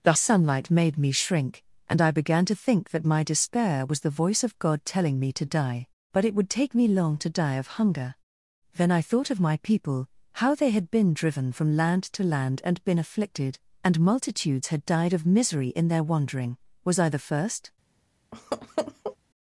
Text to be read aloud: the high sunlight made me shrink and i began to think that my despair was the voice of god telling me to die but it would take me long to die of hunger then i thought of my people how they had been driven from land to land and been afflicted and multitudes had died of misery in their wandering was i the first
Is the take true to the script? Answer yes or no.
no